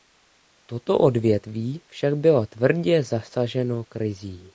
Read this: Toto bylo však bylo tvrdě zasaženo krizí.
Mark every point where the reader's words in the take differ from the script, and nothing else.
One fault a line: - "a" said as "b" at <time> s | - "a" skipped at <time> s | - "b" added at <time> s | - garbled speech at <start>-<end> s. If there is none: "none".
- "bylo" said as "odvětví" at 1.0 s